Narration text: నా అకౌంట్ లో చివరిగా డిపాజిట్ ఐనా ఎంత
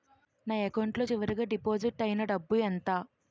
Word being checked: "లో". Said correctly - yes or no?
yes